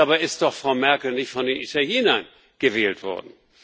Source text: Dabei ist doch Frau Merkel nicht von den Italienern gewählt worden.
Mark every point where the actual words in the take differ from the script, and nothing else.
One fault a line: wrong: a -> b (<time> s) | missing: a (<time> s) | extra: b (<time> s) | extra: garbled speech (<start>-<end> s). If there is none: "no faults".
no faults